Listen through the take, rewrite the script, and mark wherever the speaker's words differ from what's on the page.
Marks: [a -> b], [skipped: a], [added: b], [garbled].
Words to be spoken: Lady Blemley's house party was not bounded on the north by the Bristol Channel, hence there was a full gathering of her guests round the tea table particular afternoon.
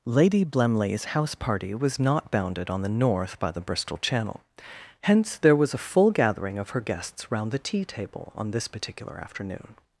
Lady Blemley's house party was not bounded on the north by the Bristol Channel, hence there was a full gathering of her guests round the tea table [added: on this] particular afternoon.